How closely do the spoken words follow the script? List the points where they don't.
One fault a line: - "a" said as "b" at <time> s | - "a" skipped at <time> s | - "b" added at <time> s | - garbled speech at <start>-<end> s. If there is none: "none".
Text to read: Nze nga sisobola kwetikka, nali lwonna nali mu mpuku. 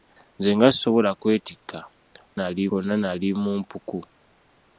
none